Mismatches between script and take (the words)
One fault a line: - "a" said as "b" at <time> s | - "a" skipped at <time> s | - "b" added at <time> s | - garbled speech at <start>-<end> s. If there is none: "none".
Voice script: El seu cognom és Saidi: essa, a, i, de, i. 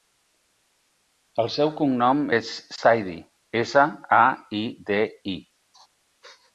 none